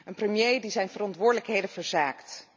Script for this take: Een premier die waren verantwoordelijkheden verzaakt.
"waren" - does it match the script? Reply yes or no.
no